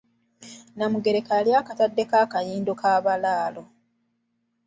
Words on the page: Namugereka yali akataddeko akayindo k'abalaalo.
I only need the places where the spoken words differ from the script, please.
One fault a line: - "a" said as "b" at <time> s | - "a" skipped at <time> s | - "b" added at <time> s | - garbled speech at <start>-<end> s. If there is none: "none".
none